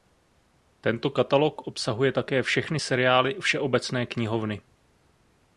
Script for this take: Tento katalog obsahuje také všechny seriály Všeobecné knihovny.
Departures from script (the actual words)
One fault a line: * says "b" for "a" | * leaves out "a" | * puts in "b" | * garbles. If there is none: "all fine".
all fine